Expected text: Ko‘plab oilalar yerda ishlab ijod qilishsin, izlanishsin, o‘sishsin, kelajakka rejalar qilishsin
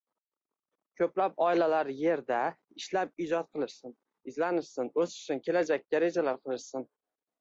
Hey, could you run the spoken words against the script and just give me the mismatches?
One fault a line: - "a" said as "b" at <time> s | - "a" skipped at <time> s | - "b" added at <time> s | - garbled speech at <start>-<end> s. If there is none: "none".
none